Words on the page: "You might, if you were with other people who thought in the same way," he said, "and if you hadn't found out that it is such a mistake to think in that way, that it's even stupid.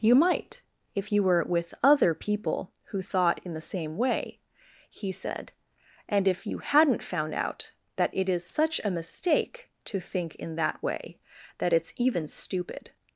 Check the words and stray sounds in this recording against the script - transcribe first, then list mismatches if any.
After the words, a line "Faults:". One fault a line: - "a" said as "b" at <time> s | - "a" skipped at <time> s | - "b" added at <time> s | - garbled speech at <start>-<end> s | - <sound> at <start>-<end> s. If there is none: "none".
"You might, if you were with other people who thought in the same way," he said, "and if you hadn't found out that it is such a mistake to think in that way, that it's even stupid.
Faults:
none